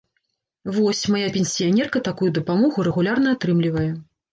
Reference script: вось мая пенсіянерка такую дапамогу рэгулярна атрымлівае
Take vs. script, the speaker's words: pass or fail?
pass